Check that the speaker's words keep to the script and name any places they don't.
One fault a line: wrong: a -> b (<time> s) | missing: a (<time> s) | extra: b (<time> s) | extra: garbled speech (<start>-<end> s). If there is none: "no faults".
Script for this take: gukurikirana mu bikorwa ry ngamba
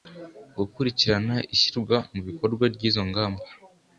extra: ishyirwa (1.6 s)
extra: izo (2.9 s)